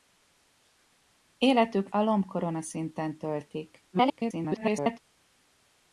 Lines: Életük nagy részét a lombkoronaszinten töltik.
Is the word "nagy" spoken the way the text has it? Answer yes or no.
no